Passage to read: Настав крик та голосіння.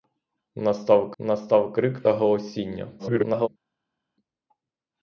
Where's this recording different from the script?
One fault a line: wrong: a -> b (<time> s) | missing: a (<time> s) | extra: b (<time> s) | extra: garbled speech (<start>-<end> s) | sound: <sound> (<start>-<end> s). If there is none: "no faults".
extra: настав (1.2 s)
extra: garbled speech (3.0-3.5 s)